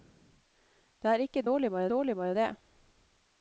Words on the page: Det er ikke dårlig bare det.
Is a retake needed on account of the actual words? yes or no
yes